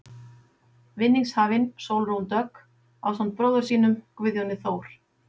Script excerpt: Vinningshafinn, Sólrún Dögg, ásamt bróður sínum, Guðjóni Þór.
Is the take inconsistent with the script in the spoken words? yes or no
no